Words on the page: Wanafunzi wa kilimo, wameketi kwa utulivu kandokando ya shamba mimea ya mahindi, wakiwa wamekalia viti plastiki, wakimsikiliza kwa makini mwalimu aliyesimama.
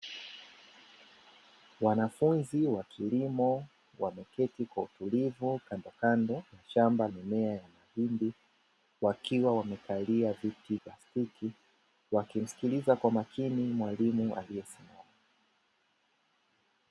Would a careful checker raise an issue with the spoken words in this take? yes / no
no